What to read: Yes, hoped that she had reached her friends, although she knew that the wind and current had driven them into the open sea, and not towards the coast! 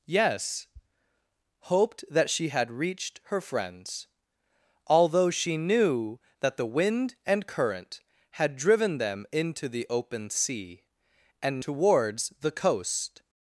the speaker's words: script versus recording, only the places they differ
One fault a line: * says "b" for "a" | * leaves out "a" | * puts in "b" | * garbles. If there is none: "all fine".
* leaves out "not"